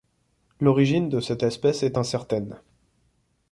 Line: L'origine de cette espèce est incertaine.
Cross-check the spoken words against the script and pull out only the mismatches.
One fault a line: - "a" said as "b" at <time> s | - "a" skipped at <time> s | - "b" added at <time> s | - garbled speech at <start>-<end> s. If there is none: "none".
none